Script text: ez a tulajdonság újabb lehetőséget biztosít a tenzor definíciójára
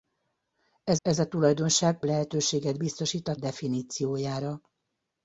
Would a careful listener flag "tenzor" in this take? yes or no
yes